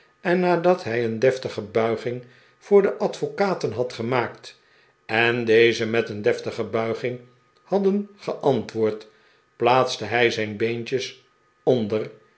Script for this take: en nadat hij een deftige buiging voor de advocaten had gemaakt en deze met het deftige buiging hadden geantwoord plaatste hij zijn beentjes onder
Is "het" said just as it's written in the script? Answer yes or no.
no